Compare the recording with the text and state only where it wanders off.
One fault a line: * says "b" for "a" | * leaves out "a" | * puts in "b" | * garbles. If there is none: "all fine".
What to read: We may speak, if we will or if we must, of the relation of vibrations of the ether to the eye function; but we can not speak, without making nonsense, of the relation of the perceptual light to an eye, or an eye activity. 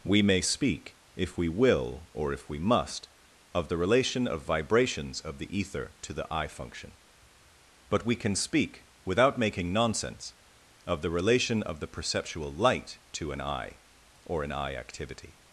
* leaves out "not"